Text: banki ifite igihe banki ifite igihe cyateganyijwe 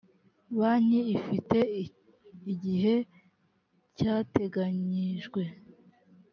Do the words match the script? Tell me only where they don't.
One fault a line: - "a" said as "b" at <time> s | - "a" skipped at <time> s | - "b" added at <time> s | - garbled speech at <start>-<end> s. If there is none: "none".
- "banki ifite igihe" skipped at 3.0 s